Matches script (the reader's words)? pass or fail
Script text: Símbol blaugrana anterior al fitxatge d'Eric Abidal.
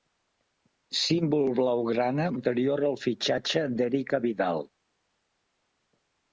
pass